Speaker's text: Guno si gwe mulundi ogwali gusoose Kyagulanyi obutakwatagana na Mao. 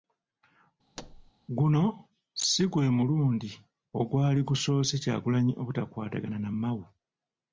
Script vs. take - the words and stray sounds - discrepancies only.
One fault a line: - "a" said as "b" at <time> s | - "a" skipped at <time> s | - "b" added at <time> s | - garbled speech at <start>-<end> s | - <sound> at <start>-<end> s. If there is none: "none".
- thud at 1.0-1.3 s